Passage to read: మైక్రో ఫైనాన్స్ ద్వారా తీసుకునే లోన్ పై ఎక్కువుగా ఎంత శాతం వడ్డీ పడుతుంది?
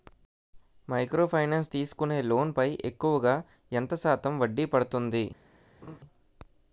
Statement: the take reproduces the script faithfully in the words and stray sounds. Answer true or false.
false